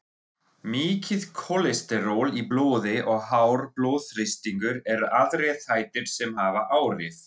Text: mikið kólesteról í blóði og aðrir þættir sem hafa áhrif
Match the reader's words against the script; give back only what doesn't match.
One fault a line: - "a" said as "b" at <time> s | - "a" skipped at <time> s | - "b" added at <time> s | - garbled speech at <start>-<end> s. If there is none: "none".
- "hár blóðþrýstingur eru" added at 3.3 s